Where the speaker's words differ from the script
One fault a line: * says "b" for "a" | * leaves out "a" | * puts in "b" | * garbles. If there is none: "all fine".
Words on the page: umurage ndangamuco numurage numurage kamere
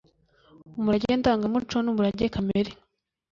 * leaves out "numurage"